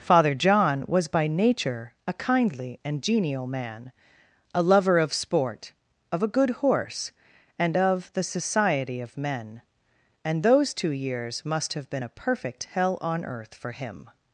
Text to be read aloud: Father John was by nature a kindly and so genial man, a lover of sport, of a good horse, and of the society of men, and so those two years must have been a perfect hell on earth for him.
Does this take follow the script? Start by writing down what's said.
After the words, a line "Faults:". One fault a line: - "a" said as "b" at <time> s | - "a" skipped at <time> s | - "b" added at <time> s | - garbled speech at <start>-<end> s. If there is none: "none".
Father John was by nature a kindly and genial man, a lover of sport, of a good horse, and of the society of men, and those two years must have been a perfect hell on earth for him.
Faults:
- "so" skipped at 3.0 s
- "so" skipped at 10.4 s